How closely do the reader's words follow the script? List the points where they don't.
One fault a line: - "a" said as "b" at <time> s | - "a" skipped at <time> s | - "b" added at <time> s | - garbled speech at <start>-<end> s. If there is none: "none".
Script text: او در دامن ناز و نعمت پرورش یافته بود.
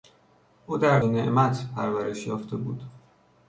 - "دامن ناز" skipped at 1.0 s